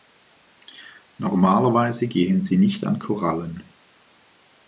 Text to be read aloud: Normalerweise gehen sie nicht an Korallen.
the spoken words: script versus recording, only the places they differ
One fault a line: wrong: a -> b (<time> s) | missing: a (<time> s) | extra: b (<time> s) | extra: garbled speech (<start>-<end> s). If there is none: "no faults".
no faults